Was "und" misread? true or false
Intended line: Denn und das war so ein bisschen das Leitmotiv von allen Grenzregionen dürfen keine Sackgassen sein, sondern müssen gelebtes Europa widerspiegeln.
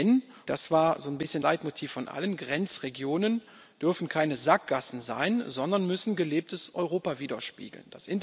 true